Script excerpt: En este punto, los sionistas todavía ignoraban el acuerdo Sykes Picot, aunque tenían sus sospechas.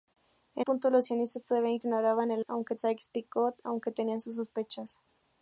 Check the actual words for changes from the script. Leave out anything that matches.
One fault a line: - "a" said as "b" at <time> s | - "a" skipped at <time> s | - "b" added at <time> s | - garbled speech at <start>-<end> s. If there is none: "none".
- "este" skipped at 0.7 s
- "acuerdo" said as "aunque" at 2.5 s